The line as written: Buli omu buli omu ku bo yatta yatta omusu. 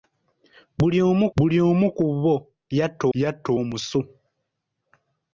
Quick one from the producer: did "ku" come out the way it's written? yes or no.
yes